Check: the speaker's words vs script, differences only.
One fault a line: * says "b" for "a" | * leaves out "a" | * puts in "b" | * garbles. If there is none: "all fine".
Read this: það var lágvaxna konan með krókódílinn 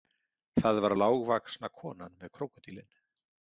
all fine